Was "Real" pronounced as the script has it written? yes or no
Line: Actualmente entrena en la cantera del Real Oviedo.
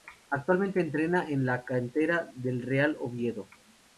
yes